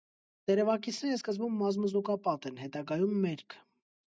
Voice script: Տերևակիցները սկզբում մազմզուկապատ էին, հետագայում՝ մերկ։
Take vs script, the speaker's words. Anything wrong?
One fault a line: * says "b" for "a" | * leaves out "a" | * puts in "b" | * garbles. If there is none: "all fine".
* says "են" for "էին"